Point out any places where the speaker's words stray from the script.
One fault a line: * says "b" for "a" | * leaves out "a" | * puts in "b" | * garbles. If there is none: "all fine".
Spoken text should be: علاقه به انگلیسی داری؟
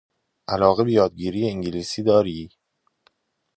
* puts in "یادگیری"